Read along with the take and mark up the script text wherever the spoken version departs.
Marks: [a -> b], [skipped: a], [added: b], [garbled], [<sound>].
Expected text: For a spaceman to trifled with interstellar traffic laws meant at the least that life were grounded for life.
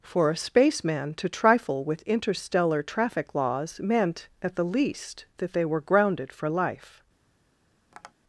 For a spaceman to [trifled -> trifle] with interstellar traffic laws meant at the least that [life -> they] were grounded for life. [tap]